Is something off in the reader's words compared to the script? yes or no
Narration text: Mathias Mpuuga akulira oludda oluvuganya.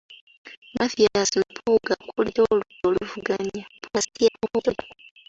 yes